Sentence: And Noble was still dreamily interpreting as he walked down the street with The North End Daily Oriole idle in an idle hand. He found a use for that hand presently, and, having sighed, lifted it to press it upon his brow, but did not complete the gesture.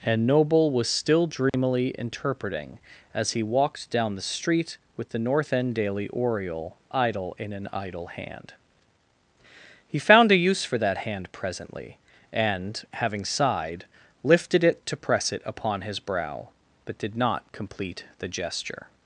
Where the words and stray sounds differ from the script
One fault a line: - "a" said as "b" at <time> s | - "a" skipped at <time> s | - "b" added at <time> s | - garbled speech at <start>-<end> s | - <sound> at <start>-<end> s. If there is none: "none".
- dropout at 1.5-1.5 s